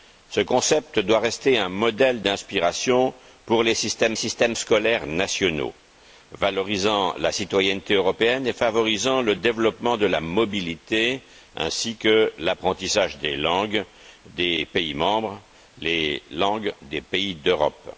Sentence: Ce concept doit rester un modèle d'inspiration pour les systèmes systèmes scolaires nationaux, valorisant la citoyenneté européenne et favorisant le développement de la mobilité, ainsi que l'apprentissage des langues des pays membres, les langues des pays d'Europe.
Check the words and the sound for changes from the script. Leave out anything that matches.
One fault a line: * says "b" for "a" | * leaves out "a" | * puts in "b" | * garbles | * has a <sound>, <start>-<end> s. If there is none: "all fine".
all fine